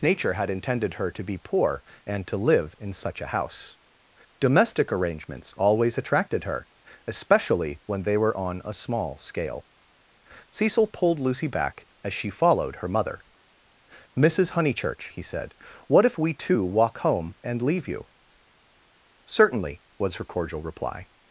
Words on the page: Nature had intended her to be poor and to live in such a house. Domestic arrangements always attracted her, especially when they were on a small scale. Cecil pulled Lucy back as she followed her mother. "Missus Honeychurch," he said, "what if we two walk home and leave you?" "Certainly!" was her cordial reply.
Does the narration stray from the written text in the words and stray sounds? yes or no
no